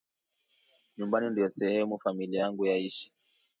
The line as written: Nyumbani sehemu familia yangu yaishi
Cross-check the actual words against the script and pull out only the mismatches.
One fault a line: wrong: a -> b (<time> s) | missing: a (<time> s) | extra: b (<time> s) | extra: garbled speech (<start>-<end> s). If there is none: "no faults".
extra: ndio (1.3 s)